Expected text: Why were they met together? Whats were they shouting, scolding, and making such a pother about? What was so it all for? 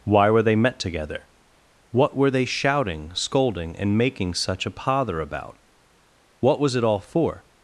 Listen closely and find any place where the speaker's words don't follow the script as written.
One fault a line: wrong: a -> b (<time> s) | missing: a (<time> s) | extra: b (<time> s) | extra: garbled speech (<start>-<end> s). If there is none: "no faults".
wrong: Whats -> What (1.9 s)
missing: so (6.7 s)